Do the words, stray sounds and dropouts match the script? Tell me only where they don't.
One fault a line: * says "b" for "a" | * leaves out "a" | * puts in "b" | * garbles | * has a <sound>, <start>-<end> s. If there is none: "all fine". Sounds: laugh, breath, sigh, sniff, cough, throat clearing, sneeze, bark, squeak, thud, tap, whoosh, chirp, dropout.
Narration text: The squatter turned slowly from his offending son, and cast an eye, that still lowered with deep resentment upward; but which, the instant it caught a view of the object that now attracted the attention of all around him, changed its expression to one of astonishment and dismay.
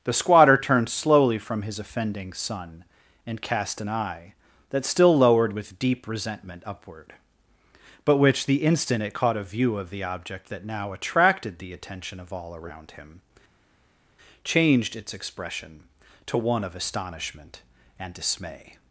all fine